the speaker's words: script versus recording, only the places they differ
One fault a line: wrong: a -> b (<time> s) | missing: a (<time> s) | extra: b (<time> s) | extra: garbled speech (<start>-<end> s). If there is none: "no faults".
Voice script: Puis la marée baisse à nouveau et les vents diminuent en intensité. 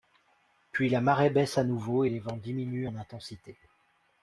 no faults